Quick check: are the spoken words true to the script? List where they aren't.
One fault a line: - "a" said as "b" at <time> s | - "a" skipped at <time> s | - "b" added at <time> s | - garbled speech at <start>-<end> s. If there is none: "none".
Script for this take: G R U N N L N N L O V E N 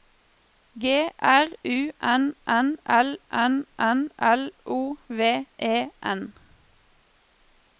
none